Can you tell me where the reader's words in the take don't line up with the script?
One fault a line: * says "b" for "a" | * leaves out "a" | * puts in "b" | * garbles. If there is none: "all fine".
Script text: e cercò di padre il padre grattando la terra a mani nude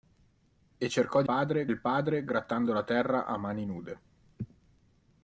all fine